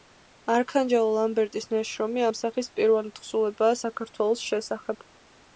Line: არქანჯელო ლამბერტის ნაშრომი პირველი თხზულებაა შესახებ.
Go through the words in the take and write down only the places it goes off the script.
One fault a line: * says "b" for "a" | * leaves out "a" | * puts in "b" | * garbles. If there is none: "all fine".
* puts in "ამ სახის"
* puts in "საქართველოს"